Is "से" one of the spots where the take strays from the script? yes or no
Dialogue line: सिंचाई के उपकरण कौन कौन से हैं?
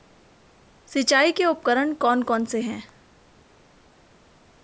no